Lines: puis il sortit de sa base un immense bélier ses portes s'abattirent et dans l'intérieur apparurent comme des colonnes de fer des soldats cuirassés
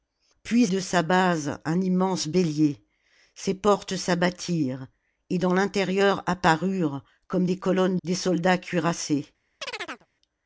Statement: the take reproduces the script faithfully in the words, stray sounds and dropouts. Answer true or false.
false